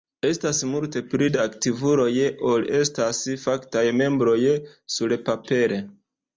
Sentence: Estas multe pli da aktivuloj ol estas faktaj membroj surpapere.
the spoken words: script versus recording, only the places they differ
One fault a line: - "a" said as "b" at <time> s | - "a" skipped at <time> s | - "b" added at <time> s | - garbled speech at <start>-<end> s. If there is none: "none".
none